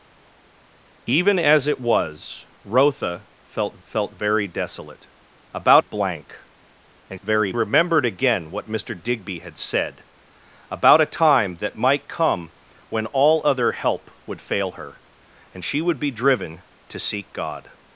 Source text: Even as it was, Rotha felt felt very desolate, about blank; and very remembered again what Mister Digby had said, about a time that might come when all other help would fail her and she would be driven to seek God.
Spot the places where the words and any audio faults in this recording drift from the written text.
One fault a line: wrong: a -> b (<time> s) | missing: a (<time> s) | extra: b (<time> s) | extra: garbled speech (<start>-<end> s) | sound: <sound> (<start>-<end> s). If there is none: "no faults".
no faults